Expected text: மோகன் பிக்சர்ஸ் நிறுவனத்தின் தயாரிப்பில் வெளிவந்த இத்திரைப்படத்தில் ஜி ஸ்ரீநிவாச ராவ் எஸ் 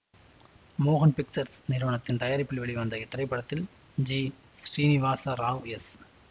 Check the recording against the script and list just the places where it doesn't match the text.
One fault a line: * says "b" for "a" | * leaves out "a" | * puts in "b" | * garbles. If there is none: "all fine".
all fine